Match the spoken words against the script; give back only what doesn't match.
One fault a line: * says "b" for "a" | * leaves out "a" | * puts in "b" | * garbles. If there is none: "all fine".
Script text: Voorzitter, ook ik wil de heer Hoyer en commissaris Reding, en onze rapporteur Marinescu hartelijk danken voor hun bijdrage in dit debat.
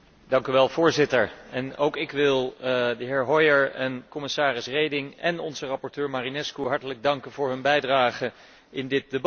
all fine